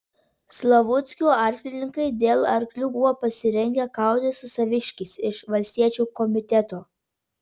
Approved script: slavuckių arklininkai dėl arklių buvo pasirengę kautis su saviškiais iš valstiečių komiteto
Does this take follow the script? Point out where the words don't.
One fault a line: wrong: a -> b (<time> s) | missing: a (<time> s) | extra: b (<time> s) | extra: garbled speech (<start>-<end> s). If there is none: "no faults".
no faults